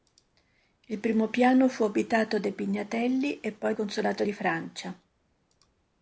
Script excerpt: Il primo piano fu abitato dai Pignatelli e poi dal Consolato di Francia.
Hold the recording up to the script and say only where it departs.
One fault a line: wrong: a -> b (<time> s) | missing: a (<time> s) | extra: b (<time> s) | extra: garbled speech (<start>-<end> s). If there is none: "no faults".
missing: dal (3.8 s)